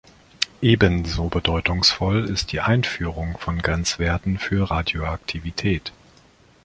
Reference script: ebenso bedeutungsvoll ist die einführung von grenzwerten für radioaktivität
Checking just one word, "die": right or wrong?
right